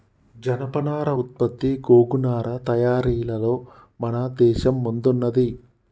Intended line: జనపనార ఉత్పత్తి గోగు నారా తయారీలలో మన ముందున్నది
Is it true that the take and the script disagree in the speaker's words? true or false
true